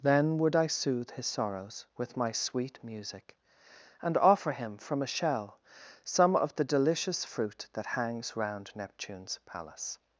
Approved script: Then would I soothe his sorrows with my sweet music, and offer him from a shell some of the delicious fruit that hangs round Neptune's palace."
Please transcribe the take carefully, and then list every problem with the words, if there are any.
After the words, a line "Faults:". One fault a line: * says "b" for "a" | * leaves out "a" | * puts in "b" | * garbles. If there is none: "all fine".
Then would I soothe his sorrows with my sweet music, and offer him from a shell some of the delicious fruit that hangs round Neptune's palace."
Faults:
all fine